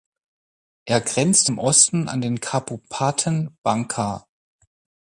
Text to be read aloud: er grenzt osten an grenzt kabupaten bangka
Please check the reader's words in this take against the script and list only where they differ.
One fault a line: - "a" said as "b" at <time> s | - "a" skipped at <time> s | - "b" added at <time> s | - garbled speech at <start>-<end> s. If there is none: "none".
- "im" added at 1.5 s
- "grenzt" said as "den" at 2.2 s